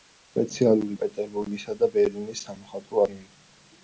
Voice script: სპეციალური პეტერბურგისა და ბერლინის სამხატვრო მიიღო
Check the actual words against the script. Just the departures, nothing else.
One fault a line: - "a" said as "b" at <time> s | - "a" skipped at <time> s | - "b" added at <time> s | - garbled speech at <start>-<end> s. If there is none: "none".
none